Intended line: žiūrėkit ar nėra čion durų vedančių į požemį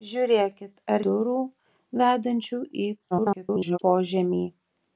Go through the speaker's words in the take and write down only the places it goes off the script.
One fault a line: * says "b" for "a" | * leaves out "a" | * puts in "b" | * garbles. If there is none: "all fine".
* leaves out "nėra čion"
* garbles